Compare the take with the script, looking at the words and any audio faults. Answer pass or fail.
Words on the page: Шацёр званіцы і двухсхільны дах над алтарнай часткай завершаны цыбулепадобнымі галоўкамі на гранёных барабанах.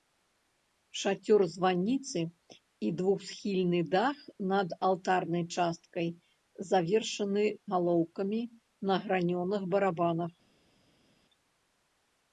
fail